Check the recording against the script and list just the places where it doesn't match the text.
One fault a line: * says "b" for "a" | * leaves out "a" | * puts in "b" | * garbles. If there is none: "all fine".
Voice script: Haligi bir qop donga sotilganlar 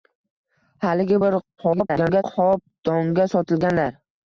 * garbles